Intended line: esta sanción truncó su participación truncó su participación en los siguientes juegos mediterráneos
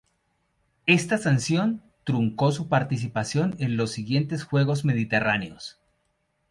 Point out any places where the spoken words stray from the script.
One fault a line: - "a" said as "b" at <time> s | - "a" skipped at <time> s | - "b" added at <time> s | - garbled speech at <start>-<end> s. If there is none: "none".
- "truncó su participación" skipped at 3.5 s